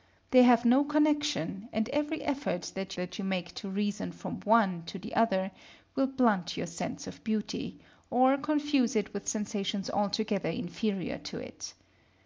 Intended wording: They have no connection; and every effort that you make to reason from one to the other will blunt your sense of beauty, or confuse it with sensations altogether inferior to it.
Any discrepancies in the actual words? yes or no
yes